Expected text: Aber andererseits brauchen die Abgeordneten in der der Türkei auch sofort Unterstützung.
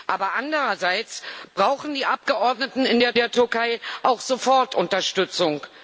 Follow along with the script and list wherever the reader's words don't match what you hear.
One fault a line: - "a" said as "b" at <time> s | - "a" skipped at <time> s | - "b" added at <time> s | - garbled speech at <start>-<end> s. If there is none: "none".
none